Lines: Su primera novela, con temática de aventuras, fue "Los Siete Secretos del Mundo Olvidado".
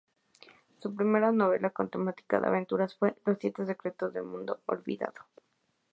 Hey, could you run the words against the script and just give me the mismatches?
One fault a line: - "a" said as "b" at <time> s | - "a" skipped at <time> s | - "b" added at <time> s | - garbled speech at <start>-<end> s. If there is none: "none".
none